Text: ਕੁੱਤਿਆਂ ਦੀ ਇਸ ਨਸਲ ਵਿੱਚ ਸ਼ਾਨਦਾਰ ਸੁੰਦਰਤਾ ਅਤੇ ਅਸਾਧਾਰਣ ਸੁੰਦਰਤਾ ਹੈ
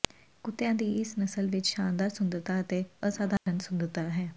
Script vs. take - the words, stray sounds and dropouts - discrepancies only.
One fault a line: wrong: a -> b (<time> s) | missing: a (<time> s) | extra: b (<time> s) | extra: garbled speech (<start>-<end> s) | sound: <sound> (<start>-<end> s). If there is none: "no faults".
sound: dropout (3.4-3.5 s)